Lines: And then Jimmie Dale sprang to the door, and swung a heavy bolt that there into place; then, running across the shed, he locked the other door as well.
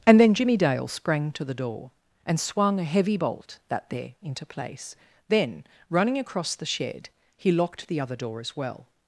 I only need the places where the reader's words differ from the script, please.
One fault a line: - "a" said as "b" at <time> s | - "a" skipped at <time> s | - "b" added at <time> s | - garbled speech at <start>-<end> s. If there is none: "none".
none